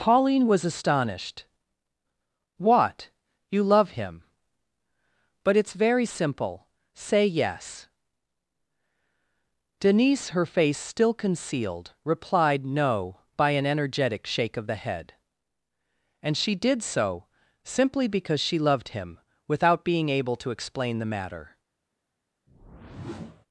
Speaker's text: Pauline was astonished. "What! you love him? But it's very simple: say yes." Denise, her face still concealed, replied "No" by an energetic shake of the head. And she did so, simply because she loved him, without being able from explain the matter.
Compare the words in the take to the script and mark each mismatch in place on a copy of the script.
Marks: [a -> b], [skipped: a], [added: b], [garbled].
Pauline was astonished. "What! you love him? But it's very simple: say yes." Denise, her face still concealed, replied "No" by an energetic shake of the head. And she did so, simply because she loved him, without being able [from -> to] explain the matter.